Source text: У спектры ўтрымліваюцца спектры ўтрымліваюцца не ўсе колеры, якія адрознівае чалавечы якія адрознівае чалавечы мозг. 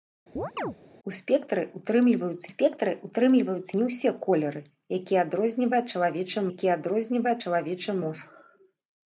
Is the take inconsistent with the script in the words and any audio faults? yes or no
yes